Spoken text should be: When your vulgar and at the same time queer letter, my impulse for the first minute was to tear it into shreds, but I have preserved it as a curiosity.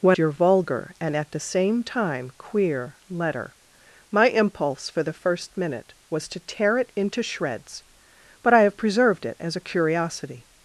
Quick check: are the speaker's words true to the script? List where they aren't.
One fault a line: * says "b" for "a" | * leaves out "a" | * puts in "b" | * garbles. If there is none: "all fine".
all fine